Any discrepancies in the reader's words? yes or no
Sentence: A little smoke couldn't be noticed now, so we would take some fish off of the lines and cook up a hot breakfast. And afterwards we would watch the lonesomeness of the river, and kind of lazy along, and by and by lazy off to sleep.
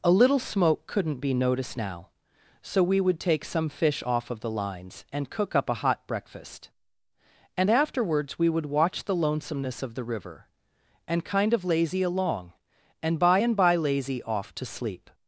no